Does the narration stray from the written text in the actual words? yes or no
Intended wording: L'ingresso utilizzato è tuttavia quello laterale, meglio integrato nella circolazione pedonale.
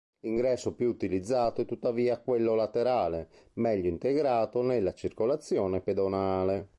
yes